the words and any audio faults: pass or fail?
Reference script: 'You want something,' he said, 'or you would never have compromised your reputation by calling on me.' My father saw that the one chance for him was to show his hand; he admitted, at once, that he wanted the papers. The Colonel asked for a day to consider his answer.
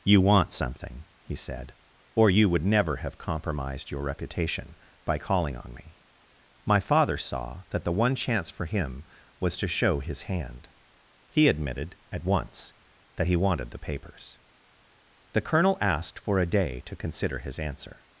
pass